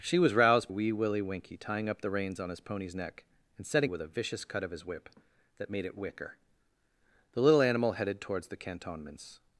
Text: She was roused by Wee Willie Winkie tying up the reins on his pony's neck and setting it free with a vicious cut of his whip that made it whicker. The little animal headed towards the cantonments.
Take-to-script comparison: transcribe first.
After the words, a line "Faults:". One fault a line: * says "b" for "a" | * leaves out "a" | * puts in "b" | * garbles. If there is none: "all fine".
She was roused Wee Willie Winkie tying up the reins on his pony's neck and setting with a vicious cut of his whip that made it whicker. The little animal headed towards the cantonments.
Faults:
* leaves out "by"
* leaves out "it free"